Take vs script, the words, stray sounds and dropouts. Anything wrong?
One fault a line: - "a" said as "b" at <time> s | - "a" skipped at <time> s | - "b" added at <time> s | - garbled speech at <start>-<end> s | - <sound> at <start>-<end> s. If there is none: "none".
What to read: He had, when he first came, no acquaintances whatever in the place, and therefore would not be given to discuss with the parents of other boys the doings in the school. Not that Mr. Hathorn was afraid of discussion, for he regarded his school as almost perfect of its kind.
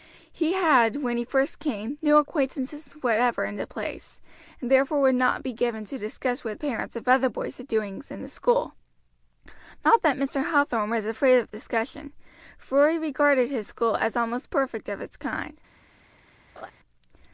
- "the" skipped at 6.6 s
- laugh at 16.6-16.7 s